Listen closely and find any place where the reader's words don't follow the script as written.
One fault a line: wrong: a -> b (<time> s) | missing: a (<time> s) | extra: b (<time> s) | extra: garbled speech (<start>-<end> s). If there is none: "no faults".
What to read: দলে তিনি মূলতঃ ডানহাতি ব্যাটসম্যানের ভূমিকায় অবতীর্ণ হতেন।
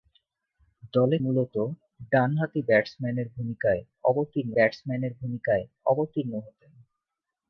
missing: তিনি (1.2 s)
extra: ব্যাটসম্যানের ভূমিকায় অবতীর্ণ (4.5 s)